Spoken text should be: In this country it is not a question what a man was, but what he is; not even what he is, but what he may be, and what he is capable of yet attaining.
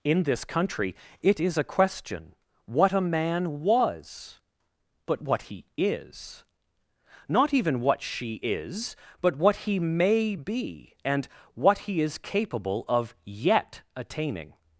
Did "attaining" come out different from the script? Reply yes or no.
no